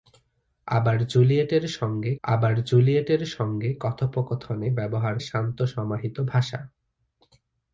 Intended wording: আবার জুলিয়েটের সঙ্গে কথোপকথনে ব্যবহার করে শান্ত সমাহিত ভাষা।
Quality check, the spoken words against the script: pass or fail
fail